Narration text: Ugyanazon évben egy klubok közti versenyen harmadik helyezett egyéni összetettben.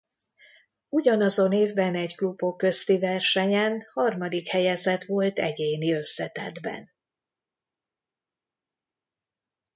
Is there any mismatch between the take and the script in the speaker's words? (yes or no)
yes